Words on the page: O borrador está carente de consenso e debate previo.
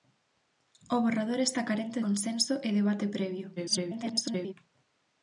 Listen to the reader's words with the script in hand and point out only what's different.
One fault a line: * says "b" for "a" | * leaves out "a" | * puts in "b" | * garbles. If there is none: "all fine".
* leaves out "de"
* garbles